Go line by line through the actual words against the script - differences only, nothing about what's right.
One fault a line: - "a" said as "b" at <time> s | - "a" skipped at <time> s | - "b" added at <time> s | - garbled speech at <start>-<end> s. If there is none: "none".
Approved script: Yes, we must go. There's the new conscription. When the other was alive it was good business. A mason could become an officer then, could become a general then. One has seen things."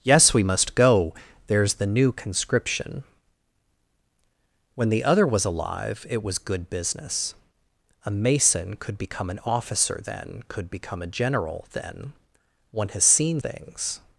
none